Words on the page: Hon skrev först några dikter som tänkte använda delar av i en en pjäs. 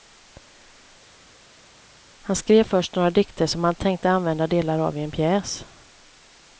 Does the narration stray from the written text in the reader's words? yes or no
yes